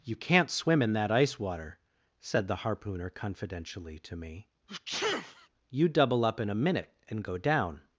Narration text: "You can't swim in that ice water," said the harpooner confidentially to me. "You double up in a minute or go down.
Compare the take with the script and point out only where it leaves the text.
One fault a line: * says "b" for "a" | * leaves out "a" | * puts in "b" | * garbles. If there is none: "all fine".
* says "and" for "or"